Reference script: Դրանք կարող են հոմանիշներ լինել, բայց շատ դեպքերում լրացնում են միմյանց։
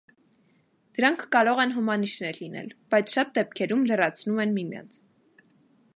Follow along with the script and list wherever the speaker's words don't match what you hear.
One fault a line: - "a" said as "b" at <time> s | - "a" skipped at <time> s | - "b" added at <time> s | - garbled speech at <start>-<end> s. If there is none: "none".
none